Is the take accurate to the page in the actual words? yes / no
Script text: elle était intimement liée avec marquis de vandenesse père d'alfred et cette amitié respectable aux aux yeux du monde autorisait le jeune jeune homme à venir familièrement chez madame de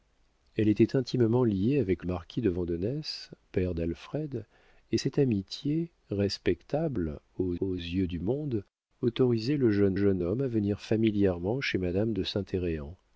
yes